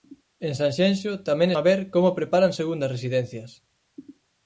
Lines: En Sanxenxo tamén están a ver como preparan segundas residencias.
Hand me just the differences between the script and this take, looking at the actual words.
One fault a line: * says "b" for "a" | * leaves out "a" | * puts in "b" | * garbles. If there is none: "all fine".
* leaves out "están"